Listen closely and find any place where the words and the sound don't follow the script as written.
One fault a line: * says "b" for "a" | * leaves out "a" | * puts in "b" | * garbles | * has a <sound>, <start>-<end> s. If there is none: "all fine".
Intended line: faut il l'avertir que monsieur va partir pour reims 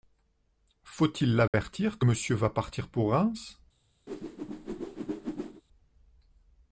* has a dropout, 1.5-1.5 s
* has a whoosh, 4.1-5.6 s